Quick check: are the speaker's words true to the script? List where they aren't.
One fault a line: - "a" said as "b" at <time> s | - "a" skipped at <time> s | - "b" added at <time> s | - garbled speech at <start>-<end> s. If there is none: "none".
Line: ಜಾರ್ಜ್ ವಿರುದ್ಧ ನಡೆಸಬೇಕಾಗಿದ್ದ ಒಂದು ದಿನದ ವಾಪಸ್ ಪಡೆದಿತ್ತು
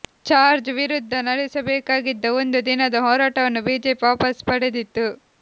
- "ಹೋರಾಟವನ್ನು ಬಿಜೆಪಿ" added at 3.0 s